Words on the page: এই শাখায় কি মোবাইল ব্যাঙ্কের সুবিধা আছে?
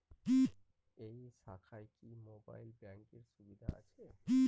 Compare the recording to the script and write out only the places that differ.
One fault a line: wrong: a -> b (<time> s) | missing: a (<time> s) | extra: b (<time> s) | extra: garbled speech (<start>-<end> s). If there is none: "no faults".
no faults